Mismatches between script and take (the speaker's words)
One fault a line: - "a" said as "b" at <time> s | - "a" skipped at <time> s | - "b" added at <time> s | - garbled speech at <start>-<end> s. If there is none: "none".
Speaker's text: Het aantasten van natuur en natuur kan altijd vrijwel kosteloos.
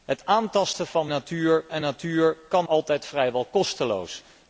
none